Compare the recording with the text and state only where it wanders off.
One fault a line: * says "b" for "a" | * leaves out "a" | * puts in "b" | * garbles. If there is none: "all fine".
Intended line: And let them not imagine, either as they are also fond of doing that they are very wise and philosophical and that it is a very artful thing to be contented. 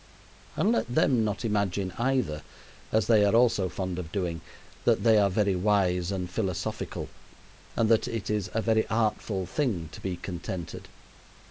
all fine